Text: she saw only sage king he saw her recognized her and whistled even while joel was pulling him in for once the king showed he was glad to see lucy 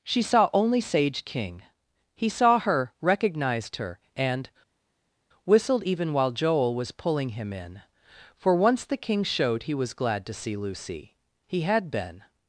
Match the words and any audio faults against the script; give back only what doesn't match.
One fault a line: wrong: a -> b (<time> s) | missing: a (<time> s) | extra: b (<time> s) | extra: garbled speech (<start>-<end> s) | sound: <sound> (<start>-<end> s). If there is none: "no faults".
extra: he had been (11.5 s)